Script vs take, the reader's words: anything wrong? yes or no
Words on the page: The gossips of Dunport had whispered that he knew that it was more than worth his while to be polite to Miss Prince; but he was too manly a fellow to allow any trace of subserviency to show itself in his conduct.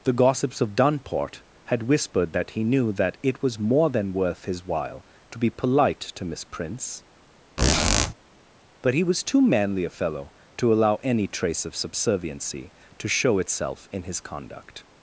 no